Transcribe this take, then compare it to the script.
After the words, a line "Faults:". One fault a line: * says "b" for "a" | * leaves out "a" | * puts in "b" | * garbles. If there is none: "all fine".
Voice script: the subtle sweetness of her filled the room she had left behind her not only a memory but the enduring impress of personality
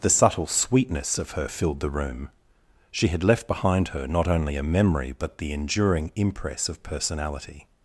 the subtle sweetness of her filled the room she had left behind her not only a memory but the enduring impress of personality
Faults:
all fine